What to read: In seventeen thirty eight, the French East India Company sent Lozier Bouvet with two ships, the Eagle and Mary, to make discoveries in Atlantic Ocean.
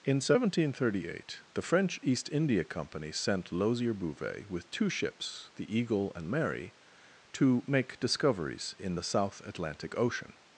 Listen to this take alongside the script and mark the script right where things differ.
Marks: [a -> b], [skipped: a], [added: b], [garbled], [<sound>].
In seventeen thirty eight, the French East India Company sent Lozier Bouvet with two ships, the Eagle and Mary, to make discoveries in [added: the South] Atlantic Ocean.